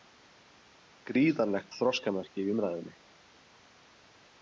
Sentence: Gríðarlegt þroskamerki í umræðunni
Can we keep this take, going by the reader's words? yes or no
yes